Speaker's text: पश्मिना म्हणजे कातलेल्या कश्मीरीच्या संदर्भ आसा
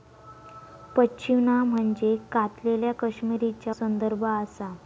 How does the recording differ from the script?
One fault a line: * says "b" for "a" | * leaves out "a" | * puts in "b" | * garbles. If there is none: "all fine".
all fine